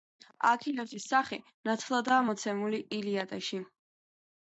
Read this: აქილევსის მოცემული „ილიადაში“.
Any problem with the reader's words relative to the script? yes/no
yes